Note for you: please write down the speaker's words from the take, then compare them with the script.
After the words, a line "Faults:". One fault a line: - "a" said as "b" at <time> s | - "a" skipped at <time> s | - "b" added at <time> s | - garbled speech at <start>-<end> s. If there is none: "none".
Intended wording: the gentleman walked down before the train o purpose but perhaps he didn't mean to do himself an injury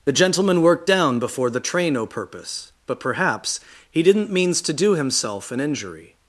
the gentleman worked down before the train o purpose but perhaps he didn't means to do himself an injury
Faults:
- "walked" said as "worked" at 0.6 s
- "mean" said as "means" at 4.3 s